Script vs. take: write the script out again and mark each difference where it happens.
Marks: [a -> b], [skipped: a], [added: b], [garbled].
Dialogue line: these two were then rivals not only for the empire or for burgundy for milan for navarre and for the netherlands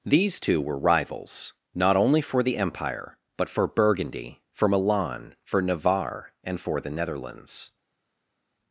these two were [skipped: then] rivals not only for the empire [or -> but] for burgundy for milan for navarre and for the netherlands